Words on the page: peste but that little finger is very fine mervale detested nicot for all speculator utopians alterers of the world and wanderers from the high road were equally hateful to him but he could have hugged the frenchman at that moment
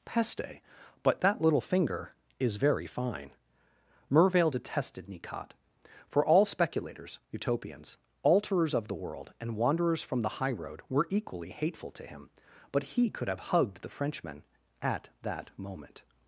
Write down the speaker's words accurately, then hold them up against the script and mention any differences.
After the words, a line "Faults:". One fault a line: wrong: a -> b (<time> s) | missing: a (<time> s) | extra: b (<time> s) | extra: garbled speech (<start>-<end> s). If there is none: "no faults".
peste but that little finger is very fine mervale detested nicot for all speculators utopians alterers of the world and wanderers from the high road were equally hateful to him but he could have hugged the frenchman at that moment
Faults:
wrong: speculator -> speculators (6.4 s)